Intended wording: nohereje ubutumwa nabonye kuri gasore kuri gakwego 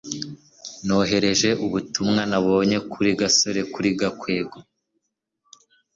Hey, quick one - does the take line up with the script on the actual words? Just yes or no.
yes